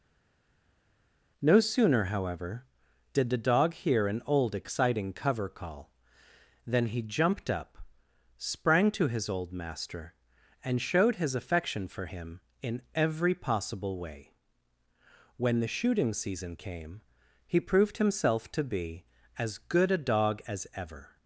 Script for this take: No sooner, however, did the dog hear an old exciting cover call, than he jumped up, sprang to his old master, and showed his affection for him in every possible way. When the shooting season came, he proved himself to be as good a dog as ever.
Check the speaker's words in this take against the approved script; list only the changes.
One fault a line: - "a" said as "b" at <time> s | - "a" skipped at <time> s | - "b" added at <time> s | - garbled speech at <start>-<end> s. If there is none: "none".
none